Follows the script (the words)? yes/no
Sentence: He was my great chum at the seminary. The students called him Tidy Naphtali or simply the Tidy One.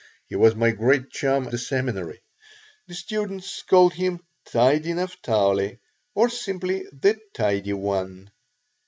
no